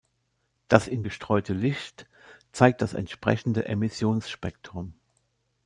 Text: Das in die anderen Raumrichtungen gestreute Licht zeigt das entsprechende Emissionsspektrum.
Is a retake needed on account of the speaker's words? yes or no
yes